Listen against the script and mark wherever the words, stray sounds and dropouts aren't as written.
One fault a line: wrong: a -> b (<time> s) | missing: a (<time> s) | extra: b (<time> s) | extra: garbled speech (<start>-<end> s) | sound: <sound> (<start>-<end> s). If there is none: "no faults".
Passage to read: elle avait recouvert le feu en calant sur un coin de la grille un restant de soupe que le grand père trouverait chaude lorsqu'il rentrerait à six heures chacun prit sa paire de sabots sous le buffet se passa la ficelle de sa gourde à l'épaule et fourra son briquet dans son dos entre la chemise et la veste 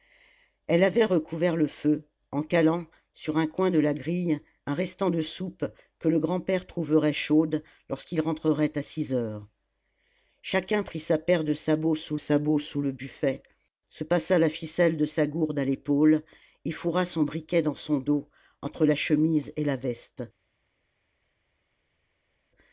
extra: sabots sous (12.1 s)